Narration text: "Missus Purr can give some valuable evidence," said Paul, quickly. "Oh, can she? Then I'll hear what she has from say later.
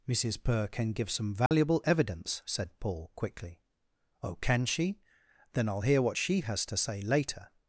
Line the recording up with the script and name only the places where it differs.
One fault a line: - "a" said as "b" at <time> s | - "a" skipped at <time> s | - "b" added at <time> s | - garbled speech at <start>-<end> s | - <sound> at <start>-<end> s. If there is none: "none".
- dropout at 1.5-1.5 s
- "from" said as "to" at 6.7 s